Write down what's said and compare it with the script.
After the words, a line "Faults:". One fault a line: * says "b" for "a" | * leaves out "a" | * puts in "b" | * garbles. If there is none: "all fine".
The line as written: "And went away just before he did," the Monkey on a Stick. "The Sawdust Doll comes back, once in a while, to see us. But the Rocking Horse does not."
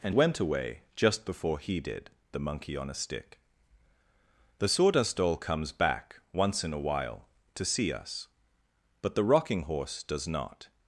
"And went away just before he did," the Monkey on a Stick. "The Sawdust Doll comes back, once in a while, to see us. But the Rocking Horse does not."
Faults:
all fine